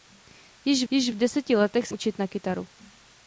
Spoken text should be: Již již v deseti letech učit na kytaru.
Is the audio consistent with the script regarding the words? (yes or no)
yes